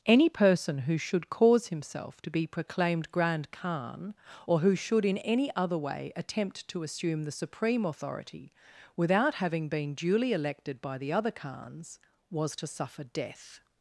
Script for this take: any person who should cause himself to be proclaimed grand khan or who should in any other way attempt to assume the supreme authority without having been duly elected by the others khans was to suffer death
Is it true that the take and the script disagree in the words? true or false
true